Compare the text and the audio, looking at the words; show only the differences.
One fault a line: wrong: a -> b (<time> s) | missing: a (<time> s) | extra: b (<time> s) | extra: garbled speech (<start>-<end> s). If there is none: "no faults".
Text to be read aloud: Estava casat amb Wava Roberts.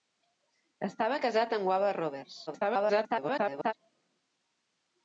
extra: garbled speech (2.5-3.7 s)